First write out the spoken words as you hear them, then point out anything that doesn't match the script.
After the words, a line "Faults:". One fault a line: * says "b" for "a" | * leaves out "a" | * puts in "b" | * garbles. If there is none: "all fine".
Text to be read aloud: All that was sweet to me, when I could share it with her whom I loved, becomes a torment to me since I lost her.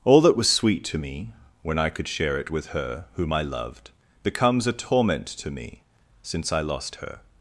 All that was sweet to me, when I could share it with her whom I loved, becomes a torment to me since I lost her.
Faults:
all fine